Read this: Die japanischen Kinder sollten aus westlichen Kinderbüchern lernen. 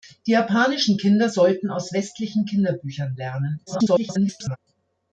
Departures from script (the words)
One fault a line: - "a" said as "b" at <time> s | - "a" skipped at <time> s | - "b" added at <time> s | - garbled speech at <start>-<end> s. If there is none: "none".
- garbled speech at 3.7-4.6 s